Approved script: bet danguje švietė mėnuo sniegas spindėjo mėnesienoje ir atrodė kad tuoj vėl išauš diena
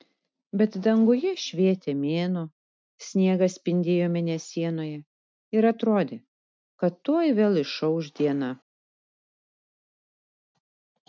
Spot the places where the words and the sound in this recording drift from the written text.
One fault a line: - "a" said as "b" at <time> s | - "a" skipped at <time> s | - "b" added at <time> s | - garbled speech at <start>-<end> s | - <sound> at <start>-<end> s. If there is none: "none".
none